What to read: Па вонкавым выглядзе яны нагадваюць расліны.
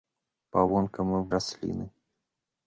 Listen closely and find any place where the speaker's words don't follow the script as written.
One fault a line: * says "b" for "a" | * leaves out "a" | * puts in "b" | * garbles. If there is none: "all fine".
* leaves out "выглядзе яны нагадваюць"